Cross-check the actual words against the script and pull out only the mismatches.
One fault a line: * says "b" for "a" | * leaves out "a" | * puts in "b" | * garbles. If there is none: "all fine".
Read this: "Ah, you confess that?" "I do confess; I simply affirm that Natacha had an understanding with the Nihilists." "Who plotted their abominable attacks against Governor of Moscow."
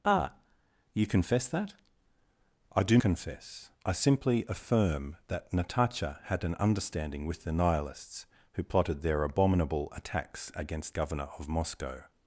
all fine